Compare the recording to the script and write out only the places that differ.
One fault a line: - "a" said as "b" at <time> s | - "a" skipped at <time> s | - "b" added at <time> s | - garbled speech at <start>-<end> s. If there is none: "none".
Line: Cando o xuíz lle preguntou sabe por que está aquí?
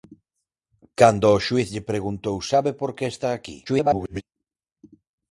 - garbled speech at 3.7-4.2 s